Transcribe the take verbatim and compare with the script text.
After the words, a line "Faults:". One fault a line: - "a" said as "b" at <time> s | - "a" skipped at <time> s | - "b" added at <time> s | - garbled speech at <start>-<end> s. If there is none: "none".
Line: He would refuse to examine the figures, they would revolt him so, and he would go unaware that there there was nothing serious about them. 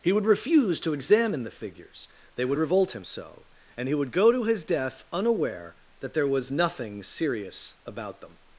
He would refuse to examine the figures, they would revolt him so, and he would go to his death unaware that there was nothing serious about them.
Faults:
- "to his death" added at 4.3 s
- "there" skipped at 6.3 s